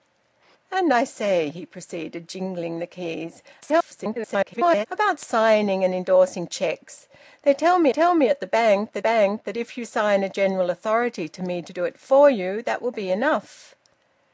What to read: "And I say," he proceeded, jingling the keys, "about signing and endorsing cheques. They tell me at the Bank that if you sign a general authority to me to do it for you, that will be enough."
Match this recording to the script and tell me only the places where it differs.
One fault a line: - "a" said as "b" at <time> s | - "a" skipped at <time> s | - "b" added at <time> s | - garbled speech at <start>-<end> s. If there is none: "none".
- garbled speech at 3.6-4.9 s
- "tell me" added at 7.9 s
- "Bank that" added at 9.0 s